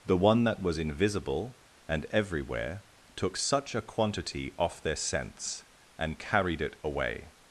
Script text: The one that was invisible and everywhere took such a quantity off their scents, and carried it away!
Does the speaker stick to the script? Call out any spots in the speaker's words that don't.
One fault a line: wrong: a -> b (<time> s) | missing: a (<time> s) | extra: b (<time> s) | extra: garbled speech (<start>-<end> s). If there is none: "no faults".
no faults